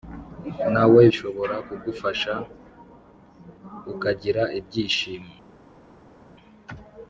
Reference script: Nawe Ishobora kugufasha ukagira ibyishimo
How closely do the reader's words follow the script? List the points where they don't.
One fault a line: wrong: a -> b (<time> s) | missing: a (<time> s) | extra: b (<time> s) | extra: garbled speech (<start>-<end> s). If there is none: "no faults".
no faults